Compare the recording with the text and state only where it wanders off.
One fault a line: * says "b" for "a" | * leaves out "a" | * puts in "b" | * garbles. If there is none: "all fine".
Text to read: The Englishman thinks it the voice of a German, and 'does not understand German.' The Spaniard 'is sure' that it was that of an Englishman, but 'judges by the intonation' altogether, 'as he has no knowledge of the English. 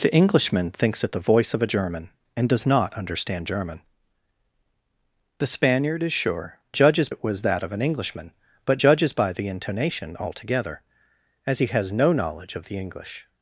* says "judges" for "that"